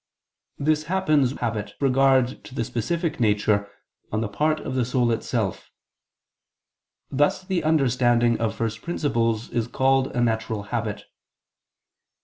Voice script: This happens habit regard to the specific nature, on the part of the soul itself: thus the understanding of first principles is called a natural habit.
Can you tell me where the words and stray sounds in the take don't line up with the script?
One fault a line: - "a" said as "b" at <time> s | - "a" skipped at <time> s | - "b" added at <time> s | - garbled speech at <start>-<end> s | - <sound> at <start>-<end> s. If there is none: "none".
none